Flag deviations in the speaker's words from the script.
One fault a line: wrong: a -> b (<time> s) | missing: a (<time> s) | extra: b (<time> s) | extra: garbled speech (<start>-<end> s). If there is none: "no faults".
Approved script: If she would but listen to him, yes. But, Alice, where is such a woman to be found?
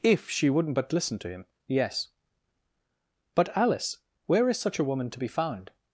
wrong: would -> wouldn't (0.5 s)